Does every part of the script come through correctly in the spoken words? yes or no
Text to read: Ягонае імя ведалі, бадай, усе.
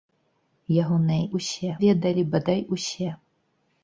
no